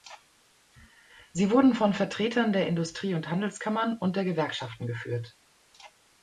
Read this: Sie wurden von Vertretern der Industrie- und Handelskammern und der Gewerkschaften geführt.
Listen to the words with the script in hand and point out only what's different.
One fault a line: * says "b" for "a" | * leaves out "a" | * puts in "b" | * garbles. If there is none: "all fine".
all fine